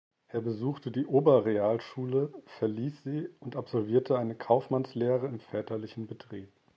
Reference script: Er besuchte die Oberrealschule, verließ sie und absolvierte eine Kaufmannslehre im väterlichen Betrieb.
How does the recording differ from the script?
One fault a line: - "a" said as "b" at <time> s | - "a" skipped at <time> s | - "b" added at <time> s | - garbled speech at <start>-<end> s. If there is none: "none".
none